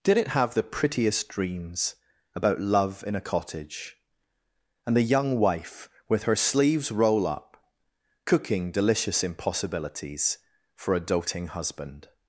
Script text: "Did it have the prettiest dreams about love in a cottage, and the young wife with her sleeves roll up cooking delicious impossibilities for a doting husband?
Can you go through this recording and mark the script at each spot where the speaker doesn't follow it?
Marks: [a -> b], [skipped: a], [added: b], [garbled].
"Did it have the prettiest dreams about love in a cottage, and the young wife with her sleeves roll up cooking delicious impossibilities for a doting husband?